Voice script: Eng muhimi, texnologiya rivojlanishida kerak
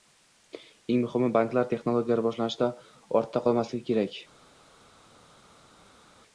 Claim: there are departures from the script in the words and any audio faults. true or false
true